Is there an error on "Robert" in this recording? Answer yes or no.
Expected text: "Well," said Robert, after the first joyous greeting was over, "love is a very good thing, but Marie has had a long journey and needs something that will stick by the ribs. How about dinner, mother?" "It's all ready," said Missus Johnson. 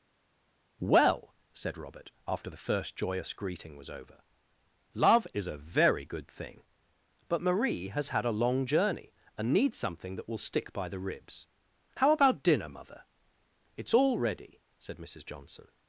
no